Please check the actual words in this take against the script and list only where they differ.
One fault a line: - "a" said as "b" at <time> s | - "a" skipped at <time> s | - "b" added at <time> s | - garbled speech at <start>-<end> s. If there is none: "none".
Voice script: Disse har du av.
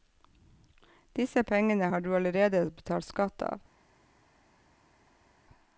- "pengene" added at 1.4 s
- "allerede betalt skatt" added at 2.2 s